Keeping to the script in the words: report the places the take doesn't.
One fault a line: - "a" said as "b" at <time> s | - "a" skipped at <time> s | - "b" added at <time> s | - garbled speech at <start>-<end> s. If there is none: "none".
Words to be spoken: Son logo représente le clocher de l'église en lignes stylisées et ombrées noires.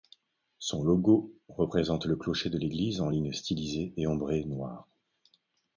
none